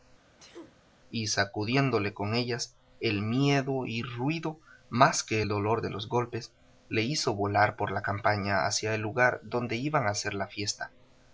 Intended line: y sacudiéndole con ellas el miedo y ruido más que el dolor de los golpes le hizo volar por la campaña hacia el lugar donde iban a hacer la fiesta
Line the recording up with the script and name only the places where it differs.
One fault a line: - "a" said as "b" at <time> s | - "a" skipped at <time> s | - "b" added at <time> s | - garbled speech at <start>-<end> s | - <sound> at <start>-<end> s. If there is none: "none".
- sneeze at 0.4-0.8 s